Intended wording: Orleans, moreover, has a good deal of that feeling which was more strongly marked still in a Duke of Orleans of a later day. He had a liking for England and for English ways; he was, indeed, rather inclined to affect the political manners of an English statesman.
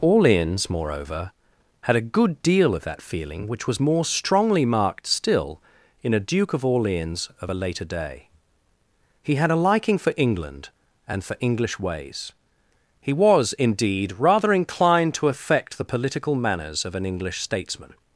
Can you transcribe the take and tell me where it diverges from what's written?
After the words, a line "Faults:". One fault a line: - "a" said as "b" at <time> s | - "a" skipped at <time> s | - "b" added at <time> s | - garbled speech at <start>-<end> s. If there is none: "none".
Orleans, moreover, had a good deal of that feeling which was more strongly marked still in a Duke of Orleans of a later day. He had a liking for England and for English ways; he was, indeed, rather inclined to affect the political manners of an English statesman.
Faults:
- "has" said as "had" at 1.8 s